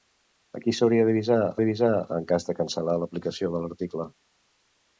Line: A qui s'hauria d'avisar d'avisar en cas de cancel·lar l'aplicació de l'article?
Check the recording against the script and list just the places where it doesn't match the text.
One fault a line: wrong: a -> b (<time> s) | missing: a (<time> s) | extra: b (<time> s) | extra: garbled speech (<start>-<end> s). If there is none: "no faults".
no faults